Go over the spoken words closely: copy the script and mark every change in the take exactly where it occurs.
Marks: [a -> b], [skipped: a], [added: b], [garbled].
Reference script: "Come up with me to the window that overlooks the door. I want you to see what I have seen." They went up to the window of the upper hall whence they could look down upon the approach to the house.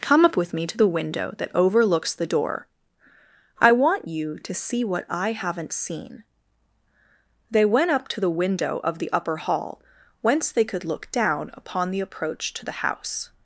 "Come up with me to the window that overlooks the door. I want you to see what I [have -> haven't] seen." They went up to the window of the upper hall whence they could look down upon the approach to the house.